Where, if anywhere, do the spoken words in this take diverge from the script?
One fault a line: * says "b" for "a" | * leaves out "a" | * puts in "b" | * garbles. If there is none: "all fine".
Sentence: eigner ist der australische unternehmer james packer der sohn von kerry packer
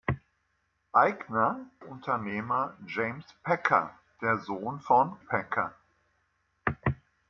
* leaves out "ist der australische"
* leaves out "kerry"